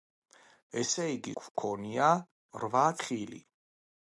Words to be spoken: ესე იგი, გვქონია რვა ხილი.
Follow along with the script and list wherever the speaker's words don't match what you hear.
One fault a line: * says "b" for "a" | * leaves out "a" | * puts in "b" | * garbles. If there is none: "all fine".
all fine